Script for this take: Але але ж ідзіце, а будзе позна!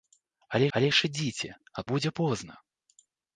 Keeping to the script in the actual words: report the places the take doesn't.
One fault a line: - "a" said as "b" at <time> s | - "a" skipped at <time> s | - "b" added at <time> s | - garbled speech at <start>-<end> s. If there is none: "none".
none